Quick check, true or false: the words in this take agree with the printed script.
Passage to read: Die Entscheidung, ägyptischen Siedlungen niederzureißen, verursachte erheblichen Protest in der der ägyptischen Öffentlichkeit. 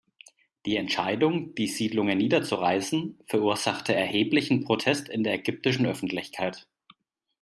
false